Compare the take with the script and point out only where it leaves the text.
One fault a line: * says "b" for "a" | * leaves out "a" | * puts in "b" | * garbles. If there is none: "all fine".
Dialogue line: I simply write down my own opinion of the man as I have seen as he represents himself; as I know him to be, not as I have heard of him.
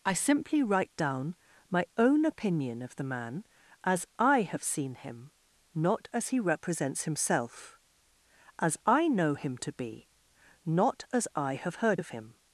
* puts in "him not"